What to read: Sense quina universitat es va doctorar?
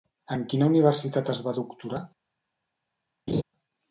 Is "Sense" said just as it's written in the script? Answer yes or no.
no